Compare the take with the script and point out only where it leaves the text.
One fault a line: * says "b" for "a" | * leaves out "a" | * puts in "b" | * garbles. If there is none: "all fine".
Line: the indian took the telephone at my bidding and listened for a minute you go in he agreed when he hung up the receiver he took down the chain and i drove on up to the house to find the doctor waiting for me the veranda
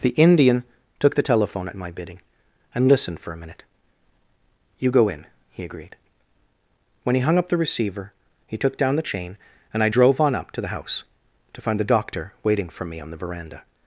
* puts in "on"